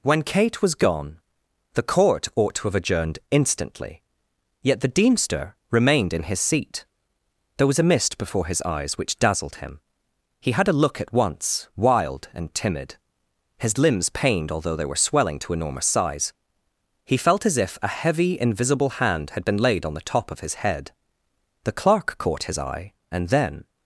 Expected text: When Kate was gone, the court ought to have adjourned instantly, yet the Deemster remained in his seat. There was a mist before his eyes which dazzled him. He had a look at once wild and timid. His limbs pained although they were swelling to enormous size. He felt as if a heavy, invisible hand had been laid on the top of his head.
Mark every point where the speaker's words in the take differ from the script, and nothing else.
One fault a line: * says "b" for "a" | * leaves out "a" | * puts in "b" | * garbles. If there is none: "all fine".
* puts in "The clerk caught his eye and then"